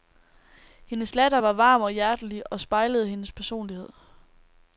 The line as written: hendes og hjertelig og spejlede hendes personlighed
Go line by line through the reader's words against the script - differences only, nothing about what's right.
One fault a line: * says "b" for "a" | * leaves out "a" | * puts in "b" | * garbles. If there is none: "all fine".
* puts in "latter var varm"